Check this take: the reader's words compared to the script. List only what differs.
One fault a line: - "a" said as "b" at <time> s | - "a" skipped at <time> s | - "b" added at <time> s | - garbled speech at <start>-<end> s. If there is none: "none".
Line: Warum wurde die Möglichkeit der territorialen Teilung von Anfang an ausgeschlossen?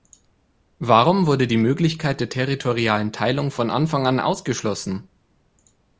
none